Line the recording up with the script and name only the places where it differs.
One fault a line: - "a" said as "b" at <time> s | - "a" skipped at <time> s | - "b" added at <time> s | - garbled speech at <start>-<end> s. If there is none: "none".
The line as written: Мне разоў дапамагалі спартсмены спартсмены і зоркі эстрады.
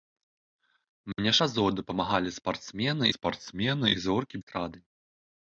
none